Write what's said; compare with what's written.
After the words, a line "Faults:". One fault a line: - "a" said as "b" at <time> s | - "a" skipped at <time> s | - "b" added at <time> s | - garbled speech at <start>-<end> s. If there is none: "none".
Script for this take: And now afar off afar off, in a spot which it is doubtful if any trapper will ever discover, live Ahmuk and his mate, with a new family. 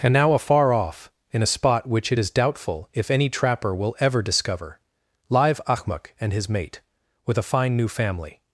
And now afar off, in a spot which it is doubtful if any trapper will ever discover, live Ahmuk and his mate, with a fine new family.
Faults:
- "afar off" skipped at 1.1 s
- "fine" added at 7.4 s